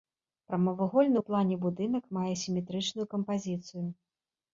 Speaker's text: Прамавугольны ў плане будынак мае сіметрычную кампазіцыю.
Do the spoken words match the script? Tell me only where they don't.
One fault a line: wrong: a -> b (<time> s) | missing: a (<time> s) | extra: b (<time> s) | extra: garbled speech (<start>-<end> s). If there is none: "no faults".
no faults